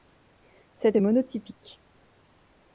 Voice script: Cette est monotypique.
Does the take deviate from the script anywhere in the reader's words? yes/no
no